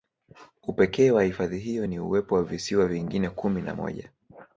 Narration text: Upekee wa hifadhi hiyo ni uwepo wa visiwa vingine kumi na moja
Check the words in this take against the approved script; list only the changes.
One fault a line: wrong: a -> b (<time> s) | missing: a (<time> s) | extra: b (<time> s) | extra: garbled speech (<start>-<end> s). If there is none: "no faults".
no faults